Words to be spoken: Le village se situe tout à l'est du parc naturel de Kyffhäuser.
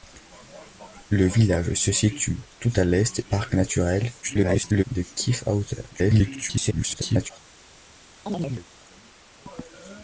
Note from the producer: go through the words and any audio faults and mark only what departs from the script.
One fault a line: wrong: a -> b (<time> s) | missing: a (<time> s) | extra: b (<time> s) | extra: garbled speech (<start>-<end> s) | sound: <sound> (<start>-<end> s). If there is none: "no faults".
missing: du (3.2 s)
extra: garbled speech (4.2-4.8 s)
extra: garbled speech (5.9-7.3 s)
sound: chirp (8.3-8.7 s)